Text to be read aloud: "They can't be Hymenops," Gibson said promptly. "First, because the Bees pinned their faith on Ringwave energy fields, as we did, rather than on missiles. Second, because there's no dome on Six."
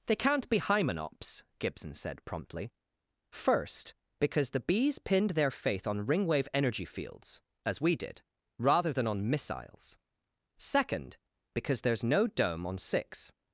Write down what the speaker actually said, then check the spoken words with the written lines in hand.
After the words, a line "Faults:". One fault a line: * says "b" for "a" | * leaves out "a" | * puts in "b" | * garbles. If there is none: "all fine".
"They can't be Hymenops," Gibson said promptly. "First, because the Bees pinned their faith on Ringwave energy fields, as we did, rather than on missiles. Second, because there's no dome on Six."
Faults:
all fine